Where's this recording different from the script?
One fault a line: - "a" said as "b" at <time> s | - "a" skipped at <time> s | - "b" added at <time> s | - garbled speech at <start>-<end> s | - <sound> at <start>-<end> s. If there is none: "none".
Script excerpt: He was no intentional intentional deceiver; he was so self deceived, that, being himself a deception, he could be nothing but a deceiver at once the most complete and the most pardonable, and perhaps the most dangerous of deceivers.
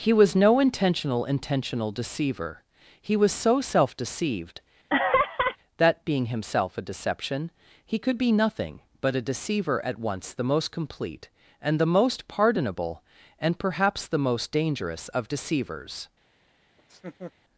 - laugh at 4.9-5.6 s
- laugh at 16.8-17.3 s